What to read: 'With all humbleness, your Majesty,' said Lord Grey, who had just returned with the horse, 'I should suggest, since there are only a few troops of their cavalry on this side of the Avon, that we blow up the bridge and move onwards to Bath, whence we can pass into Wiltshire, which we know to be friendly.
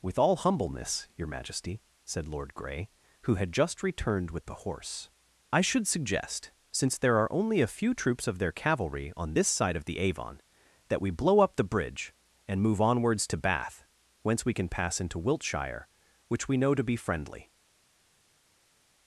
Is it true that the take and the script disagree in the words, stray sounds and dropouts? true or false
false